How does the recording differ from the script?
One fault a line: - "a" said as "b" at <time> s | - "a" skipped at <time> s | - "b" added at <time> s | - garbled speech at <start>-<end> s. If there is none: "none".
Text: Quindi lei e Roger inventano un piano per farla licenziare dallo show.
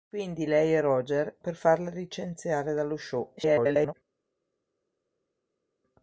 - "inventano un piano" skipped at 1.4 s
- garbled speech at 3.4-3.9 s